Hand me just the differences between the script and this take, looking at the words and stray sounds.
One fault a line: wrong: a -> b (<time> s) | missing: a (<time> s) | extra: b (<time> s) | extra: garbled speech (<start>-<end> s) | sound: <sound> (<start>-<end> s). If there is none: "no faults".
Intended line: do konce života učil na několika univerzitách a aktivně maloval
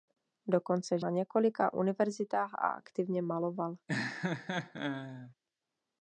missing: života učil (1.0 s)
sound: laugh (3.9-5.3 s)